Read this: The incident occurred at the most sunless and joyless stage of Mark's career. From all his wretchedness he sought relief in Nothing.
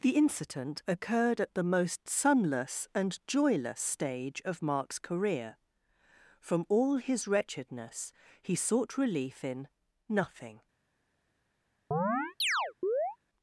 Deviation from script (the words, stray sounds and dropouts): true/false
true